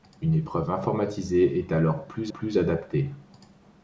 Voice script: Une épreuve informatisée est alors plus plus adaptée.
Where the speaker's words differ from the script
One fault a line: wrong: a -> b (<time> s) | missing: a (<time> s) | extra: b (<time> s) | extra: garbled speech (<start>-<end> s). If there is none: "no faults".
no faults